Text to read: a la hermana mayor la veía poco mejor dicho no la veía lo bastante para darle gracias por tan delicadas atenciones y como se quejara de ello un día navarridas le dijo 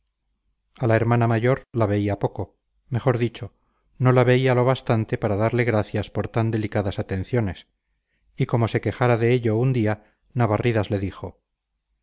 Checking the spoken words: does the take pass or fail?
pass